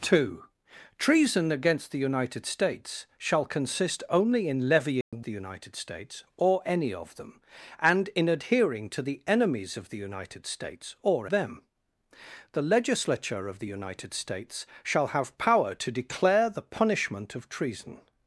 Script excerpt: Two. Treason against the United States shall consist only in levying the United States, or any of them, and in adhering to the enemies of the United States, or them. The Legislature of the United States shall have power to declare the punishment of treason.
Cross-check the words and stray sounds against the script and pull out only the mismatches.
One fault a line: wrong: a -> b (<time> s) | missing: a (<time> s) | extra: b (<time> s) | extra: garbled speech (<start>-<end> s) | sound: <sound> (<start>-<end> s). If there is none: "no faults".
sound: dropout (5.0-5.1 s)